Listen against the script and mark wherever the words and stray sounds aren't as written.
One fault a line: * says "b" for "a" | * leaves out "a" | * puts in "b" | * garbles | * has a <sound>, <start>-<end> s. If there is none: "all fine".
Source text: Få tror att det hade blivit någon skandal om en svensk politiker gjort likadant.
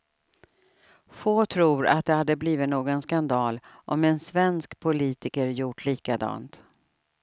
all fine